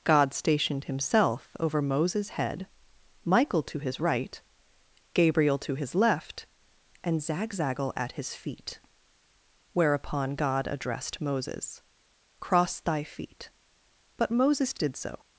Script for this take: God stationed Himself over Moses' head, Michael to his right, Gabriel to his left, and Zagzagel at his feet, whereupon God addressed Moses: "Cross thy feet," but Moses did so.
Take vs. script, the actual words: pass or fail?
pass